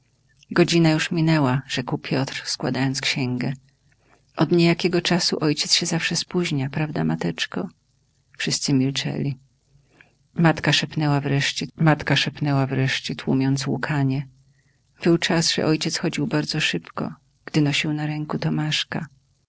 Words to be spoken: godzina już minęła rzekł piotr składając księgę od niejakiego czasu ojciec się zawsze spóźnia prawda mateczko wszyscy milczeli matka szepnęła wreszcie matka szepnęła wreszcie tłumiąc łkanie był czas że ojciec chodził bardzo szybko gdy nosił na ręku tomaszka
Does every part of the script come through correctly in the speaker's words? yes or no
yes